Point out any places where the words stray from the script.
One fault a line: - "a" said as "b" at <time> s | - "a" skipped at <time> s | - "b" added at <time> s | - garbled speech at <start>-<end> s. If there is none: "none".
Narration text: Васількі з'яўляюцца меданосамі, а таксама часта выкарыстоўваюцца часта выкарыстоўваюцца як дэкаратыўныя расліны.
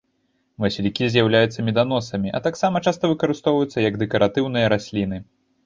- "часта выкарыстоўваюцца" skipped at 3.9 s